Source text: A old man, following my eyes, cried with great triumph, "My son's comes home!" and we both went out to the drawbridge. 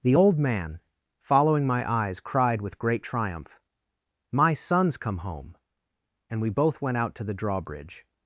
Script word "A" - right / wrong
wrong